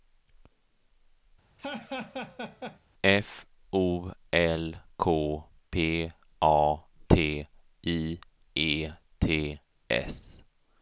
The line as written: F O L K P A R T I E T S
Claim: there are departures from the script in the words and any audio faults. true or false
true